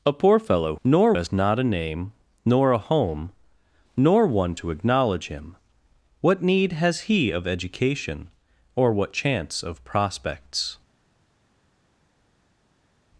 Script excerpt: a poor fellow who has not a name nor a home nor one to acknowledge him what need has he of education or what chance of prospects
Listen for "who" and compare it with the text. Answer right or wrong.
wrong